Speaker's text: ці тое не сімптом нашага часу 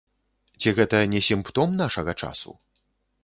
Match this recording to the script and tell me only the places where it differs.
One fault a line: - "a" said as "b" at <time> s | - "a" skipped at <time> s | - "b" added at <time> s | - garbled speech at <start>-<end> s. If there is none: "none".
- "тое" said as "гэта" at 0.8 s